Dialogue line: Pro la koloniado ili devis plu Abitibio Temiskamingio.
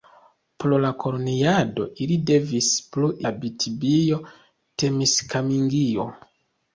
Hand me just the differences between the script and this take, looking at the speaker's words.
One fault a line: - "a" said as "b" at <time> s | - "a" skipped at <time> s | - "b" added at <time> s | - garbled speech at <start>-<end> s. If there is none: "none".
none